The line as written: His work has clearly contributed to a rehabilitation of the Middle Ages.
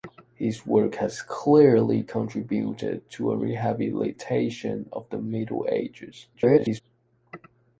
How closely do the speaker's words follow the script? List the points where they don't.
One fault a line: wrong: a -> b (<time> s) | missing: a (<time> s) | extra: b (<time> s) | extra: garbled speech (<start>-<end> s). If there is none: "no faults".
extra: garbled speech (6.3-6.8 s)